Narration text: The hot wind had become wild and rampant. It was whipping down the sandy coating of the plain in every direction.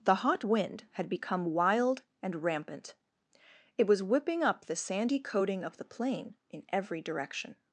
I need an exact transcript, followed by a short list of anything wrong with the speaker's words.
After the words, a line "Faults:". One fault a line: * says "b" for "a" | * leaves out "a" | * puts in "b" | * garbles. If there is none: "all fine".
The hot wind had become wild and rampant. It was whipping up the sandy coating of the plain in every direction.
Faults:
* says "up" for "down"